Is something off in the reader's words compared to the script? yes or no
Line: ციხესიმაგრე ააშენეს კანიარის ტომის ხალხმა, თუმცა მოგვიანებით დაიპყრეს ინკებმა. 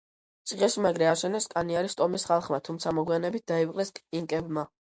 no